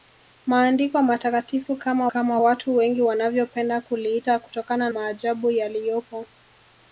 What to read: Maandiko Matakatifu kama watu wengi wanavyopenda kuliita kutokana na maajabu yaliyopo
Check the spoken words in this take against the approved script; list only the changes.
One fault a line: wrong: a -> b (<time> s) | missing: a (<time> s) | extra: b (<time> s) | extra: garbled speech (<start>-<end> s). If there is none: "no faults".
extra: kama (2.1 s)
missing: na (4.9 s)